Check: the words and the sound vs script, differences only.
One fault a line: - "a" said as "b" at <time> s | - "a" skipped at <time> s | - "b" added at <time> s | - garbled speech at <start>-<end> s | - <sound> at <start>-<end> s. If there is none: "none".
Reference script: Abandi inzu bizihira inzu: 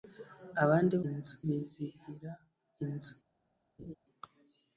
- laugh at 3.8-4.0 s